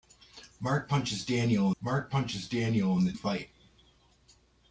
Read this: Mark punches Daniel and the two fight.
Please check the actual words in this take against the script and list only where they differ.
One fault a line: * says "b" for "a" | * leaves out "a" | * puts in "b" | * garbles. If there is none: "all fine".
* puts in "mark punches Daniel"
* leaves out "two"